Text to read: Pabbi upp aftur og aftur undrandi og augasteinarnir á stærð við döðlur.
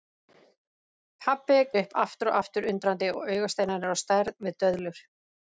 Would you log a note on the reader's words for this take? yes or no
no